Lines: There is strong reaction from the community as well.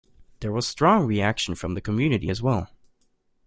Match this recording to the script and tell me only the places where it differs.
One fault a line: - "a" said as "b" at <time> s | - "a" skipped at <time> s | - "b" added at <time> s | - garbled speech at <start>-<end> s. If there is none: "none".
- "is" said as "was" at 0.5 s